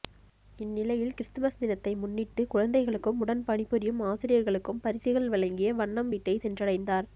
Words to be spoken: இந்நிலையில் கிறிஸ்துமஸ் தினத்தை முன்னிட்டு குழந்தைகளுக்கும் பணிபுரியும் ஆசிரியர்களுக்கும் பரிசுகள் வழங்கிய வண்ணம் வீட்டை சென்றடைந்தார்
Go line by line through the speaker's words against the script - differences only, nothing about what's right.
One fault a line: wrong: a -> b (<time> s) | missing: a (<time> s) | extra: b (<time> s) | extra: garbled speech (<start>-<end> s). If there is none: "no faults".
extra: உடன் (3.2 s)